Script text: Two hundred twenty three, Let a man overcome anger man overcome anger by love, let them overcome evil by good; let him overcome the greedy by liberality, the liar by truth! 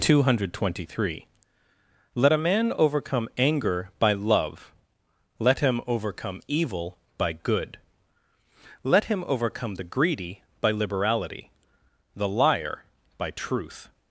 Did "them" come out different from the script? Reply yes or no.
yes